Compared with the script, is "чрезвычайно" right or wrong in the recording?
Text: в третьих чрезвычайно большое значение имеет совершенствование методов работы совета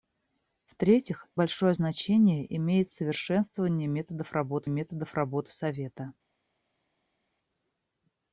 wrong